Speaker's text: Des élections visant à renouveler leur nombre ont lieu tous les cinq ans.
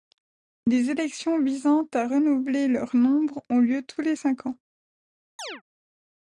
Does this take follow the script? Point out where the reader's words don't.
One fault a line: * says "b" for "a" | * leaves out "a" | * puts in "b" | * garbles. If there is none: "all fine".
all fine